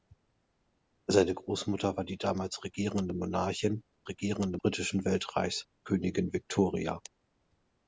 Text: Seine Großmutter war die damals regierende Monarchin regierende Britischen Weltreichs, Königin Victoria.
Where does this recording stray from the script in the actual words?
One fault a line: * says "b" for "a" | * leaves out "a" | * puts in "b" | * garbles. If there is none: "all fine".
all fine